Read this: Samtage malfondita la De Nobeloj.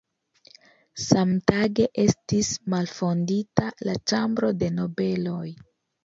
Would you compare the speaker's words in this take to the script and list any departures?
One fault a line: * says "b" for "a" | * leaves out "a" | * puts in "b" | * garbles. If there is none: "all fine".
* puts in "estis"
* puts in "Ĉambro"